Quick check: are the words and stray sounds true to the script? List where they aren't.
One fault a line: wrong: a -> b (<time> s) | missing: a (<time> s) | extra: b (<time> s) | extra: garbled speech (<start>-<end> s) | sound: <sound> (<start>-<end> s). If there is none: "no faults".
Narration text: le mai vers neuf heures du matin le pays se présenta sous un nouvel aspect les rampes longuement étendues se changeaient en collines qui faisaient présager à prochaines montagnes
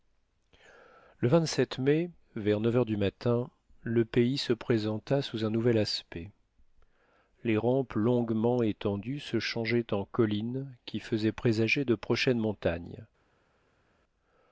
wrong: à -> de (11.8 s)